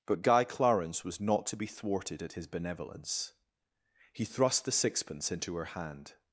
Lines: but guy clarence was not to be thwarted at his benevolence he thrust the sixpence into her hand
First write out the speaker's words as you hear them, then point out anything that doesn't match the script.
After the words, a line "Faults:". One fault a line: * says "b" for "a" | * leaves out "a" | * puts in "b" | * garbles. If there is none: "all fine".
but guy clarence was not to be thwarted at his benevolence he thrust the sixpence into her hand
Faults:
all fine